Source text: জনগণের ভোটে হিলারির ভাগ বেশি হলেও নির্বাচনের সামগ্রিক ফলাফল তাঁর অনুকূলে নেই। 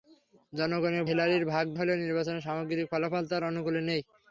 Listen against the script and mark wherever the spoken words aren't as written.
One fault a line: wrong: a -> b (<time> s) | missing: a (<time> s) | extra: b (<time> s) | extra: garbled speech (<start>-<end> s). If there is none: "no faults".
missing: ভোটে (1.0 s)
missing: বেশি (1.6 s)